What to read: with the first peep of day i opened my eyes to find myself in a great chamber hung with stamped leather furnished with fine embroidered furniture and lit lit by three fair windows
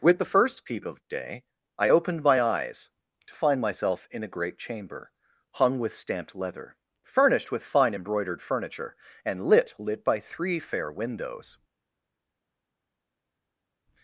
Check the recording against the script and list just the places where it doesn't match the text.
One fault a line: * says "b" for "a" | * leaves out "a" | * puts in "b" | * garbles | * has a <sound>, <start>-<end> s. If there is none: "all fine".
all fine